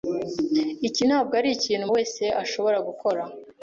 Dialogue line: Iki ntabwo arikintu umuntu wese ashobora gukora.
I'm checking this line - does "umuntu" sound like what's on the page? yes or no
no